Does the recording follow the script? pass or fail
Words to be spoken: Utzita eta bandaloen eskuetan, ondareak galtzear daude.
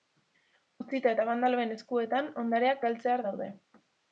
pass